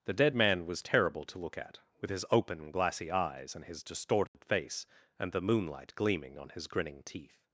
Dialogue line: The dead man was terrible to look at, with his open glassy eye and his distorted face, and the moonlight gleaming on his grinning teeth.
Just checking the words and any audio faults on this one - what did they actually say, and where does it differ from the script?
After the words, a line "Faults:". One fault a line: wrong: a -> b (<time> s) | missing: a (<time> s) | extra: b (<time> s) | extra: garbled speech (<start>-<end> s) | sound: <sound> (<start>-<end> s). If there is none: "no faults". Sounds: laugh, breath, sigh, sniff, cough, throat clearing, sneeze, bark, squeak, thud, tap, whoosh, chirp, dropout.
The dead man was terrible to look at, with his open glassy eyes and his distorted face, and the moonlight gleaming on his grinning teeth.
Faults:
wrong: eye -> eyes (3.1 s)
sound: dropout (4.3-4.3 s)